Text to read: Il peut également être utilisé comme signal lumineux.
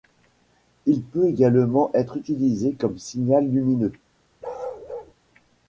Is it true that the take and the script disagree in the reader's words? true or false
false